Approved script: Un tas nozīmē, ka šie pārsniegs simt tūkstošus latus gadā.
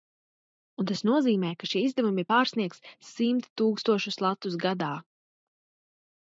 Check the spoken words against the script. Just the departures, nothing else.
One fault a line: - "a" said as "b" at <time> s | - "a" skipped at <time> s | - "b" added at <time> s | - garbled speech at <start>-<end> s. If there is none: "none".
- "izdevumi" added at 1.9 s